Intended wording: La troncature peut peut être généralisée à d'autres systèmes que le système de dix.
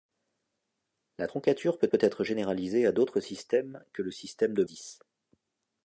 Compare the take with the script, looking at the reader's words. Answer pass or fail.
pass